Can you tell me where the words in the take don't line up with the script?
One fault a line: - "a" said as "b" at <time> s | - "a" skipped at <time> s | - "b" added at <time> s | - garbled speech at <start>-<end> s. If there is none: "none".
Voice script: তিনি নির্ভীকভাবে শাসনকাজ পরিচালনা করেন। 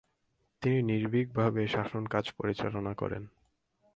none